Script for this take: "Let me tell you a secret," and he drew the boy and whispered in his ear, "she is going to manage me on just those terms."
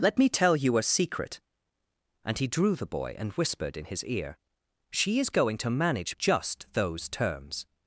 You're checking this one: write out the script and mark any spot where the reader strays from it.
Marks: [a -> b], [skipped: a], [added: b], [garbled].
"Let me tell you a secret," and he drew the boy and whispered in his ear, "she is going to manage [skipped: me on] just those terms."